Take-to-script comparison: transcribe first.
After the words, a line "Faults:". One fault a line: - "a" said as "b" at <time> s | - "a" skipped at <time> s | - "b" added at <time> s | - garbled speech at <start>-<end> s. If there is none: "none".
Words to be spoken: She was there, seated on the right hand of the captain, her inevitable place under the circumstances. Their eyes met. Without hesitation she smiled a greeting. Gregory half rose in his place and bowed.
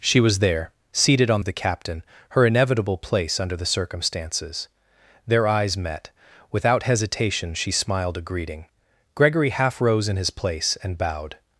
She was there, seated on of the captain, her inevitable place under the circumstances. Their eyes met. Without hesitation she smiled a greeting. Gregory half rose in his place and bowed.
Faults:
- "the right hand" skipped at 1.4 s